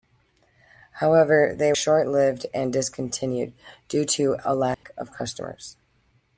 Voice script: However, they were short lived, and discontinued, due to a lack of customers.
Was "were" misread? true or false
true